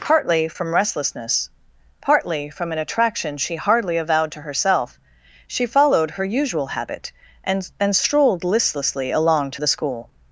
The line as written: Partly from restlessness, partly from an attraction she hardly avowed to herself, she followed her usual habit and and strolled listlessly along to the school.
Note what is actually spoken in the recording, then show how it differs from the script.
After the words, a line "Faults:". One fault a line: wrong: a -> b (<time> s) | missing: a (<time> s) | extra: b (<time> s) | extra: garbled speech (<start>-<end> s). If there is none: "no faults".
Partly from restlessness, partly from an attraction she hardly avowed to herself, she followed her usual habit and and strolled listlessly along to the school.
Faults:
no faults